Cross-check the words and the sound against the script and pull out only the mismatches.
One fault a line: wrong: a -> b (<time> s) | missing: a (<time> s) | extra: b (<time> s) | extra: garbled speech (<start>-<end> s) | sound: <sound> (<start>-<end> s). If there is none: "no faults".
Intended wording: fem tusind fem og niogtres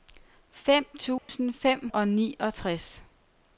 sound: dropout (1.2-1.3 s)